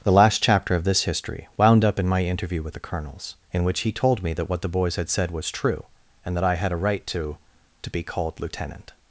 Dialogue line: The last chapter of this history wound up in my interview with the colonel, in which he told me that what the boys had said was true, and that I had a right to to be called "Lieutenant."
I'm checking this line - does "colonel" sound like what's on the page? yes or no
no